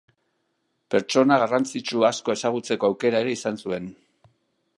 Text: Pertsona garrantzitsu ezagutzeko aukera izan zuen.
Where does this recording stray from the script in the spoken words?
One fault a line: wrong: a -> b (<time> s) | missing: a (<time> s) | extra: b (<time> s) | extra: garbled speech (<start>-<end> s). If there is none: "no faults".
extra: asko (2.1 s)
extra: ere (3.2 s)